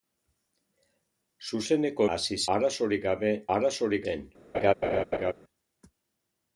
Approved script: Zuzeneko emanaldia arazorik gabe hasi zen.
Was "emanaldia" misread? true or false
true